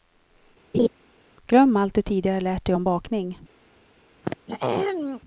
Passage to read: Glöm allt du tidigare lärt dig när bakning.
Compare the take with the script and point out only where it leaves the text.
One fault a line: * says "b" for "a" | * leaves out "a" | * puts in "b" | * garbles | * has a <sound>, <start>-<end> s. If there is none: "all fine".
* has a laugh, 0.7-0.9 s
* says "om" for "när"
* has a throat clearing, 4.2-5.2 s